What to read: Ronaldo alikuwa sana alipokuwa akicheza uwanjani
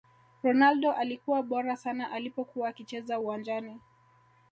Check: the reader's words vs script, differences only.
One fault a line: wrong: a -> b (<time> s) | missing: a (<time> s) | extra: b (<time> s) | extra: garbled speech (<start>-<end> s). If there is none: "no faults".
extra: bora (1.4 s)